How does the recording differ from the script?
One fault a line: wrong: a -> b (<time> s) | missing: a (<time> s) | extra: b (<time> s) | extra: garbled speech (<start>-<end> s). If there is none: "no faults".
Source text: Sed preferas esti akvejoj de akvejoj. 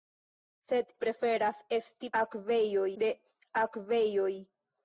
no faults